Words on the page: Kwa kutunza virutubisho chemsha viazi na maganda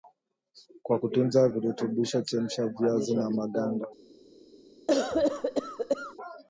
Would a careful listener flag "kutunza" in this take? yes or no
no